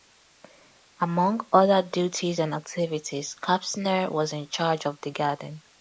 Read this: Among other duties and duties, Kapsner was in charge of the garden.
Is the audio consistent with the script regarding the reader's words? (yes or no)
no